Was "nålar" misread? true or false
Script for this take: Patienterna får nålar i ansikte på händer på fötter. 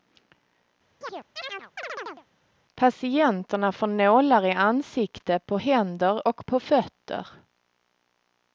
false